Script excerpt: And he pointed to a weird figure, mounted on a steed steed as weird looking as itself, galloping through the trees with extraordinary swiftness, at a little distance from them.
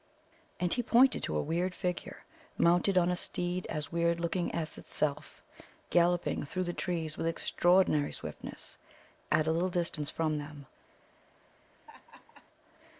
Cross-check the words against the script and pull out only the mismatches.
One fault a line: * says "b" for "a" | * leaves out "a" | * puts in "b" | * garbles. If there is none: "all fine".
* leaves out "steed"